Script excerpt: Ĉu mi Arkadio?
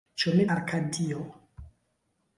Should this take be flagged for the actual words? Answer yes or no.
no